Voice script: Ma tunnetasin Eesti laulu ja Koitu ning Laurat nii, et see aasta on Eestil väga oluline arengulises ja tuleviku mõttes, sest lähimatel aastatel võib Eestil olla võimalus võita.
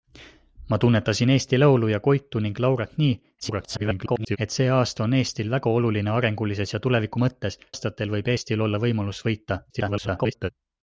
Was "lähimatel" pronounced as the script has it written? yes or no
no